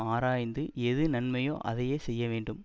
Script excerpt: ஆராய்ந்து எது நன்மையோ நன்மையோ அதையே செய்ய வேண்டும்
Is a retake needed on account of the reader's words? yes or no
yes